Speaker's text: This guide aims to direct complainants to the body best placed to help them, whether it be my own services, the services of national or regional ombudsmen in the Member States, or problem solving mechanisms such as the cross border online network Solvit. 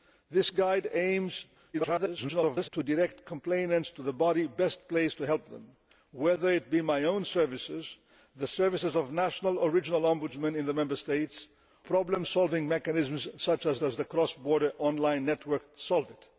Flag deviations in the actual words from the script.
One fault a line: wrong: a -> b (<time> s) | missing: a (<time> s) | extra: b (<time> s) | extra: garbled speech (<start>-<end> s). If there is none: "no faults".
extra: garbled speech (1.7-2.7 s)
missing: or (11.5 s)
extra: as (13.8 s)